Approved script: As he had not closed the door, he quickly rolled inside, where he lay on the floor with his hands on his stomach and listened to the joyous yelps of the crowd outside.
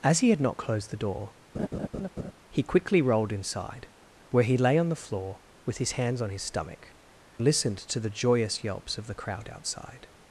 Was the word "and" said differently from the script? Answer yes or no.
yes